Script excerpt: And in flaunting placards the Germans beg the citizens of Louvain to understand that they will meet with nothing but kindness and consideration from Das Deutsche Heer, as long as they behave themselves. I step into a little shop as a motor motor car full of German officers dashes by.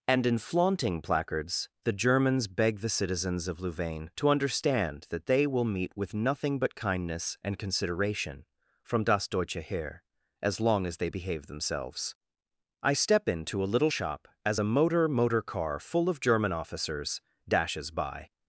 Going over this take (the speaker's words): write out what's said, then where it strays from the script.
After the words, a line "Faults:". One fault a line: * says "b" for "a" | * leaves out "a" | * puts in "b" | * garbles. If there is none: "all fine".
And in flaunting placards the Germans beg the citizens of Louvain to understand that they will meet with nothing but kindness and consideration from Das Deutsche Heer, as long as they behave themselves. I step into a little shop as a motor motor car full of German officers dashes by.
Faults:
all fine